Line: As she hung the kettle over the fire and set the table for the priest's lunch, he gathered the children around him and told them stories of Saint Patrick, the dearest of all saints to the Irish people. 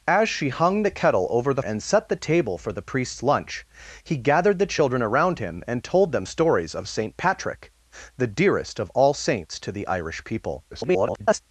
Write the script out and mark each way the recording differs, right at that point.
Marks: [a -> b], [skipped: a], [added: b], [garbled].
As she hung the kettle over the [skipped: fire] and set the table for the priest's lunch, he gathered the children around him and told them stories of Saint Patrick, the dearest of all saints to the Irish people. [garbled]